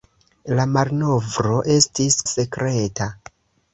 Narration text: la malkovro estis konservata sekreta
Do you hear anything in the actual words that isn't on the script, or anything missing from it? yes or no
yes